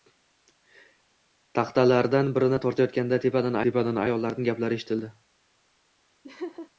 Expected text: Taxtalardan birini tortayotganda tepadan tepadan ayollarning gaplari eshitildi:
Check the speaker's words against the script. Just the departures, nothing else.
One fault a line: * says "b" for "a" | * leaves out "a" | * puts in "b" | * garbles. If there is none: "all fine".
all fine